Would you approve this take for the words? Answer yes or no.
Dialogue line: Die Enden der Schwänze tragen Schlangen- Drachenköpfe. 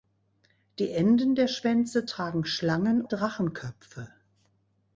yes